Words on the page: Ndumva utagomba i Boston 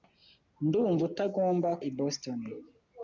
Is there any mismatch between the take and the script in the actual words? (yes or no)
no